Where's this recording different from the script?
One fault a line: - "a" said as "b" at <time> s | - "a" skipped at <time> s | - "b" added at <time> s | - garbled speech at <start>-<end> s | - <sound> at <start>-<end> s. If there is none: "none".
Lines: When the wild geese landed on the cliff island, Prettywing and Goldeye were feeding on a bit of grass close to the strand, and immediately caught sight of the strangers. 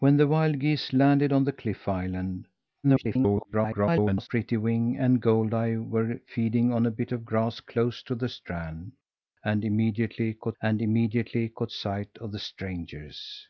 - garbled speech at 2.8-4.3 s
- "and immediately caught" added at 10.6 s